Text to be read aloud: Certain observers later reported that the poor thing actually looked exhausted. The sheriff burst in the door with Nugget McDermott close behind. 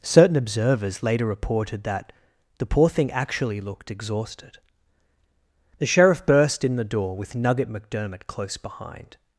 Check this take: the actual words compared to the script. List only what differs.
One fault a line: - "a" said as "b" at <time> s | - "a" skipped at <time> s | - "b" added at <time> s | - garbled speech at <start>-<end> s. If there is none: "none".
none